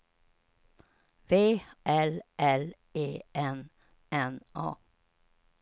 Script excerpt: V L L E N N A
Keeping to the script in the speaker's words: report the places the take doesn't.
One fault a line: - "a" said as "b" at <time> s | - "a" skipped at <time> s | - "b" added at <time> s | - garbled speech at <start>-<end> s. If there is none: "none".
none